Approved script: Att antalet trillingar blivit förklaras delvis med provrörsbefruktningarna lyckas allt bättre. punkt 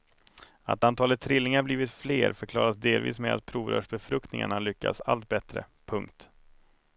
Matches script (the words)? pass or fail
fail